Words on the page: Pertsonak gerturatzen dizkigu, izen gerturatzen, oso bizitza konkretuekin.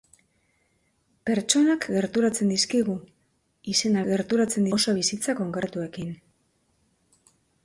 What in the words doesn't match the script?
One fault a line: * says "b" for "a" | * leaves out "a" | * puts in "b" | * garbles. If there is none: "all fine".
all fine